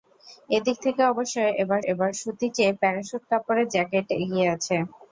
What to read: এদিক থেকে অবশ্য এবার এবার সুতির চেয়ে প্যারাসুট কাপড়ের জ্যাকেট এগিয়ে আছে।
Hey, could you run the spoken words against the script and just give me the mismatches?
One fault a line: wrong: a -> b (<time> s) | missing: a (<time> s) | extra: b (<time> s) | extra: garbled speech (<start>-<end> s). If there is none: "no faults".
no faults